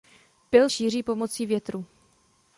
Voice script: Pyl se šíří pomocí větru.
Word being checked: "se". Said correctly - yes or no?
no